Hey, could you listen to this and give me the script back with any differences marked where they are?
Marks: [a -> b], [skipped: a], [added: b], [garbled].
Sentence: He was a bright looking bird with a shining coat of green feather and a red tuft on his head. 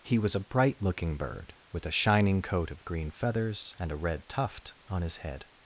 He was a bright looking bird with a shining coat of green [feather -> feathers] and a red tuft on his head.